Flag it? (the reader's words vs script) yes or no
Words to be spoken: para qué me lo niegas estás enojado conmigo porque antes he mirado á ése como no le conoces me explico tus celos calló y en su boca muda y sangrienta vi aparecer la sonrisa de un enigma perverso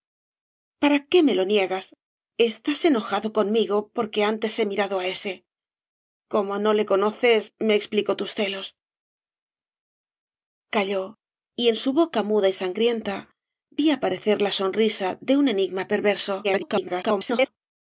yes